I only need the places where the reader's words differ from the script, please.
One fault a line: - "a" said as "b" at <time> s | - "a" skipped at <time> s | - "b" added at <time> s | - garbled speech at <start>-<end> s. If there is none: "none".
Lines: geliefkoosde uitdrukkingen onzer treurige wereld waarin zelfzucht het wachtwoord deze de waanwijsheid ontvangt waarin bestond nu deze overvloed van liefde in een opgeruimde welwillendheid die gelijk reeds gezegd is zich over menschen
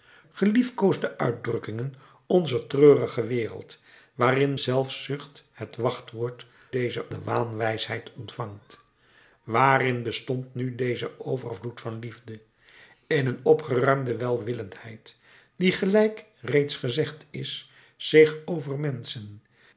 none